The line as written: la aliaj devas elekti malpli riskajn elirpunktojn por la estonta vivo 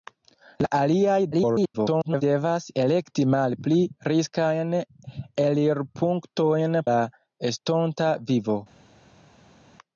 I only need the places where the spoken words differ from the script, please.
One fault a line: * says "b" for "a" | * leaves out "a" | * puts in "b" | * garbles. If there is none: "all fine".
* garbles
* leaves out "por"